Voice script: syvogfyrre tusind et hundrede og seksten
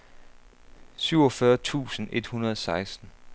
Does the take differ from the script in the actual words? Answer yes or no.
no